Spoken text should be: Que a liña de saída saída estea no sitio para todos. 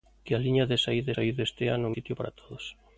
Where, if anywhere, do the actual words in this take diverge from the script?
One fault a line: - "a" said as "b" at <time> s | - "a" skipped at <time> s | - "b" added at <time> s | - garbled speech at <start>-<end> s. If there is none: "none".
none